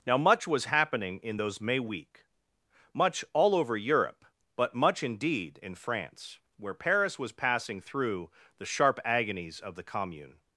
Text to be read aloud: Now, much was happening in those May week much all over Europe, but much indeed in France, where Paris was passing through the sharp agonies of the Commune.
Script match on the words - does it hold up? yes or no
yes